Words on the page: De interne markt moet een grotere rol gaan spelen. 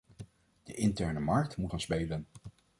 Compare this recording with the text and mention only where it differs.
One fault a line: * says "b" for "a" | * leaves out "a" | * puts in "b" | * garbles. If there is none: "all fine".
* leaves out "een grotere rol"